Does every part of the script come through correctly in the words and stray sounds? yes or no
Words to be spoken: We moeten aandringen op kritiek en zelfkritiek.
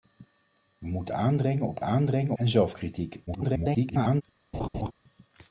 no